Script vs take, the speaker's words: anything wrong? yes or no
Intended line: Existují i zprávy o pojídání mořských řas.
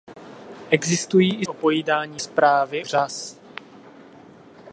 yes